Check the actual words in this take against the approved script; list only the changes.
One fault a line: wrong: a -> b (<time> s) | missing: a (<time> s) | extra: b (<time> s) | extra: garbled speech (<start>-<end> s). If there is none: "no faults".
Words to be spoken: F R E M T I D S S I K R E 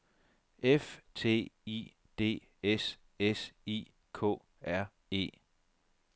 missing: R E M (1.0 s)